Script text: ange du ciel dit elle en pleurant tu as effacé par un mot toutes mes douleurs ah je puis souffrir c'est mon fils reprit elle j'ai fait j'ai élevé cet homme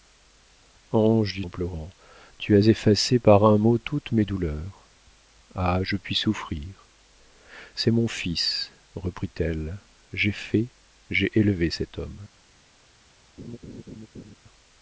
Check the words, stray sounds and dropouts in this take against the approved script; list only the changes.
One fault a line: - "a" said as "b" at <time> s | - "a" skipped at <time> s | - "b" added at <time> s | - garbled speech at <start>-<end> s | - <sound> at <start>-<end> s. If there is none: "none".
- "ciel dit elle" skipped at 1.4 s
- laugh at 13.4-14.4 s